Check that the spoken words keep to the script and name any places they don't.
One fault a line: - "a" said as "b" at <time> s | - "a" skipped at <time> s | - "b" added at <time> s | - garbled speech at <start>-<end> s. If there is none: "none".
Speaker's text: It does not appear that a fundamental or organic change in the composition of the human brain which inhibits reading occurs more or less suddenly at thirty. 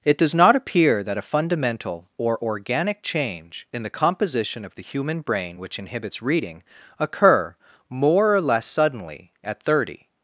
- "occurs" said as "occur" at 7.0 s